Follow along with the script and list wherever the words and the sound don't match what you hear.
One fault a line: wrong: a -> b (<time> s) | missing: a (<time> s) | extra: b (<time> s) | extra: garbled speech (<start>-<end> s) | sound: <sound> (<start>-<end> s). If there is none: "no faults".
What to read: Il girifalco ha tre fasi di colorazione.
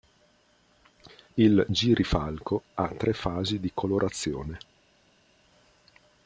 no faults